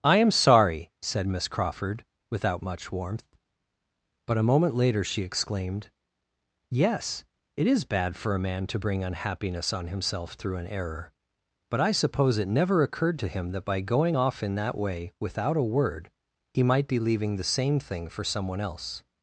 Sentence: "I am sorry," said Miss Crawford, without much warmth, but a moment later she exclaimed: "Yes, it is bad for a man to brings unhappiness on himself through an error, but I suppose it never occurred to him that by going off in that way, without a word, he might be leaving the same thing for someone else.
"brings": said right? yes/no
no